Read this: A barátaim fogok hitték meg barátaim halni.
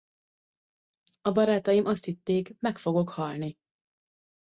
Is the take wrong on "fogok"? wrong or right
wrong